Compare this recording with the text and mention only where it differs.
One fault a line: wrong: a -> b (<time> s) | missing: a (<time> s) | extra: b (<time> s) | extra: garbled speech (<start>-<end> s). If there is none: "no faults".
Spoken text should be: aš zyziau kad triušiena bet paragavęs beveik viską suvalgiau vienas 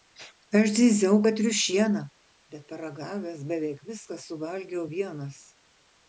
no faults